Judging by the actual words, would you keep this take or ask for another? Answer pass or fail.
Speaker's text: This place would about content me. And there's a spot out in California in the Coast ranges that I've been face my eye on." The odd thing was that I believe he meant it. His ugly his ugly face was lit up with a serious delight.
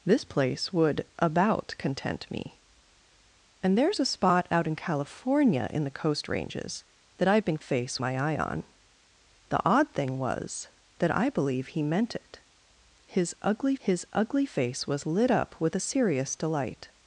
pass